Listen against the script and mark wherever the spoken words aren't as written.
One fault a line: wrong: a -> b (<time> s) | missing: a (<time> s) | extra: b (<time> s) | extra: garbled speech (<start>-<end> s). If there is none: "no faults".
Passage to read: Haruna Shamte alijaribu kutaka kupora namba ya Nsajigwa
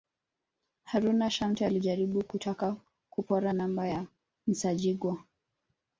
no faults